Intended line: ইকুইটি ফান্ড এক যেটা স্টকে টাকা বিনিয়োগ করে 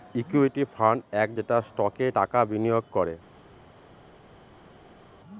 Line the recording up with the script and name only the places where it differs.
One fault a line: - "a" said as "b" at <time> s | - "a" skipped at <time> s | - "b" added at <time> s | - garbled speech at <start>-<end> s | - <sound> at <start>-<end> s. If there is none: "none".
none